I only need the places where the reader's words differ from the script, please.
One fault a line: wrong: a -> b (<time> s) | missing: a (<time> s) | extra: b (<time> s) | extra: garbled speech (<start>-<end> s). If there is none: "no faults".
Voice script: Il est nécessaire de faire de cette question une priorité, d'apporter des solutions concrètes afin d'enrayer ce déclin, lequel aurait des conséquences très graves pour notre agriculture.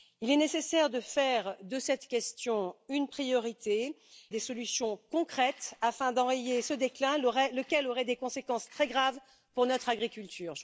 missing: d'apporter (4.0 s)